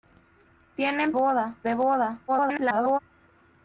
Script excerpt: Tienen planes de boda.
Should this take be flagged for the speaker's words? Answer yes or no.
yes